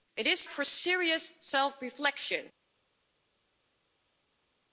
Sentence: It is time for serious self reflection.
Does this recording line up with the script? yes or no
no